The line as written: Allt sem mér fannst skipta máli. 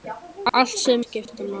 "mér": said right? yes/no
no